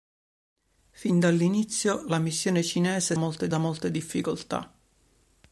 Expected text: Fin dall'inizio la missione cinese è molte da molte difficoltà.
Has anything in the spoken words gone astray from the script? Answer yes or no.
no